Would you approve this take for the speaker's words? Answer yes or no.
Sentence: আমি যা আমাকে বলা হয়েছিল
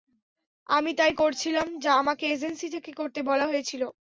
no